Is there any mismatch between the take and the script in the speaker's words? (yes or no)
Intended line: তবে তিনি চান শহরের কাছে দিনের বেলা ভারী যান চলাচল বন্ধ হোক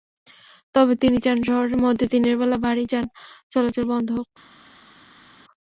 yes